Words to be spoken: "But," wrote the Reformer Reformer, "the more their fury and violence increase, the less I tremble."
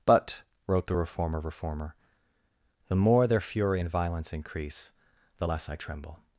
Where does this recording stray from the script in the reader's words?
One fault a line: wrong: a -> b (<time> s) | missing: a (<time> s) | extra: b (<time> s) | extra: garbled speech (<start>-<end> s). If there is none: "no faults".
no faults